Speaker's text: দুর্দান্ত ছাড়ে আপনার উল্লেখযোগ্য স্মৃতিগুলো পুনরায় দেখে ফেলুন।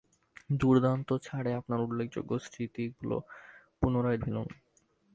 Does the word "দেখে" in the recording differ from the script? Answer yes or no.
yes